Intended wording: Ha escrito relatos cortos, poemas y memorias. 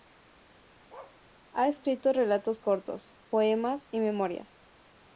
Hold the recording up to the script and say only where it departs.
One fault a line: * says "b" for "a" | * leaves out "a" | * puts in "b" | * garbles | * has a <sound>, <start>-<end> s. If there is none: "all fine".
* has a bark, 0.9-1.2 s